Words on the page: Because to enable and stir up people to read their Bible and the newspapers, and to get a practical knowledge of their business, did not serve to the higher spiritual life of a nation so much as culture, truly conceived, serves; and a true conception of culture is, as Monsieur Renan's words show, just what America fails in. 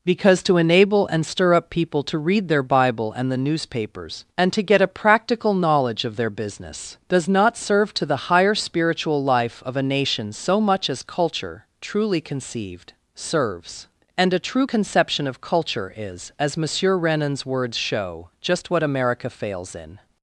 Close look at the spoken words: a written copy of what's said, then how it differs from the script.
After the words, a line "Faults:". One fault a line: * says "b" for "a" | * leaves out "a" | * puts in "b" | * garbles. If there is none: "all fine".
Because to enable and stir up people to read their Bible and the newspapers, and to get a practical knowledge of their business, does not serve to the higher spiritual life of a nation so much as culture, truly conceived, serves; and a true conception of culture is, as Monsieur Renan's words show, just what America fails in.
Faults:
* says "does" for "did"